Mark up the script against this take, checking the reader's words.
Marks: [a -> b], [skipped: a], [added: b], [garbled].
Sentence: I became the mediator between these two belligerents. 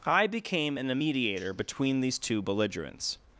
I became [the -> an] mediator between these two belligerents.